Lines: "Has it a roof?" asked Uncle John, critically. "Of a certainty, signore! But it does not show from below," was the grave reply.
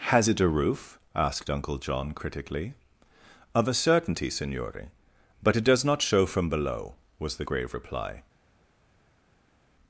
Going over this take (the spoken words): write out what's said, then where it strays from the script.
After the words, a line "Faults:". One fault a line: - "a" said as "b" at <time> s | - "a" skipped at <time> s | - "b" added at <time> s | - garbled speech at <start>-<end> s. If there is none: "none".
"Has it a roof?" asked Uncle John, critically. "Of a certainty, signore! But it does not show from below," was the grave reply.
Faults:
none